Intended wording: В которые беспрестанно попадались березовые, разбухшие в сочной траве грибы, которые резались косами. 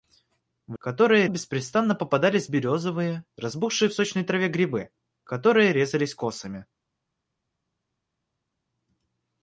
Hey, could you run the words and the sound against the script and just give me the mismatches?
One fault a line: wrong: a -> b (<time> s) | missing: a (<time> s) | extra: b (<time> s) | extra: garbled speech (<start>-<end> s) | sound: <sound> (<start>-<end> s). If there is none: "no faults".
no faults